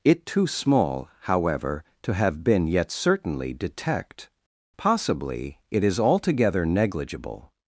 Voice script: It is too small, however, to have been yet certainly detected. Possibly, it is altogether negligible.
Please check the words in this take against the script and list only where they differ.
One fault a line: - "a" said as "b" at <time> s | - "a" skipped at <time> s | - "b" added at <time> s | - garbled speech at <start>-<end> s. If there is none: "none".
- "is" skipped at 0.2 s
- "detected" said as "detect" at 3.5 s